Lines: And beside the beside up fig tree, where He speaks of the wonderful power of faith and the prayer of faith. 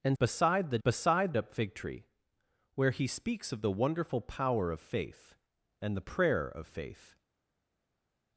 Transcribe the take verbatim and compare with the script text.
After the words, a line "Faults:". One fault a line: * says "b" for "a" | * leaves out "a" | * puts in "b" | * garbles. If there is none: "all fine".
And beside the beside up fig tree, where He speaks of the wonderful power of faith and the prayer of faith.
Faults:
all fine